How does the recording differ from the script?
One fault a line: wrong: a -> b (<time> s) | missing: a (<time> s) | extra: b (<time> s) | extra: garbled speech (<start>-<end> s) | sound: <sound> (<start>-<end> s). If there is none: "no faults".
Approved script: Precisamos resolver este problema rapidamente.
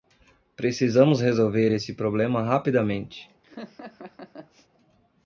wrong: este -> esse (1.7 s)
sound: laugh (3.4-4.7 s)